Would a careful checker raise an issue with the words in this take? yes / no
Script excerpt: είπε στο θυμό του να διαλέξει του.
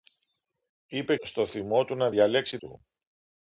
no